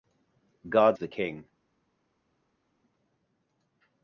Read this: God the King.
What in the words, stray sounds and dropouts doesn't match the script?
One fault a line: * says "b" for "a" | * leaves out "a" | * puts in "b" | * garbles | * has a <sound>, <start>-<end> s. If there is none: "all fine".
all fine